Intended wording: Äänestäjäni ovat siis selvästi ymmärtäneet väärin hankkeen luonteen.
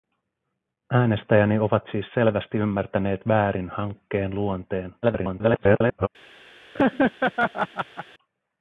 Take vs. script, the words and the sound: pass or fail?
fail